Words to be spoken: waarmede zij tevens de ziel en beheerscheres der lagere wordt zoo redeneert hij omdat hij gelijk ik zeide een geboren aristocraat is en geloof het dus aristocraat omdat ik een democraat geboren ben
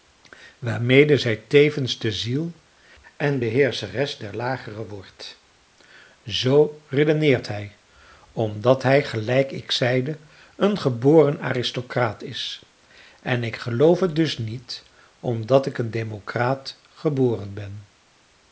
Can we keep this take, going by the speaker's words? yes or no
no